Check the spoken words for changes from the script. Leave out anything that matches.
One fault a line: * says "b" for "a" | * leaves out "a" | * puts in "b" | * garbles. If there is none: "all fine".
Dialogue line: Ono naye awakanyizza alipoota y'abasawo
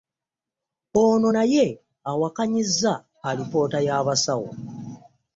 all fine